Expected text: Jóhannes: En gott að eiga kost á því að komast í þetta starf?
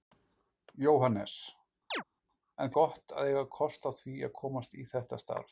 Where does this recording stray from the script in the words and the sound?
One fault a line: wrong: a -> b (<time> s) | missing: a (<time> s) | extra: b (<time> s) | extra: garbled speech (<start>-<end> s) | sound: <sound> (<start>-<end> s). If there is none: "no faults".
sound: chirp (1.9-2.0 s)